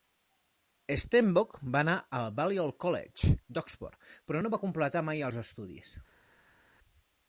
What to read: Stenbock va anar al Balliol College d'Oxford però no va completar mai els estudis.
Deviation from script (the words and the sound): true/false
false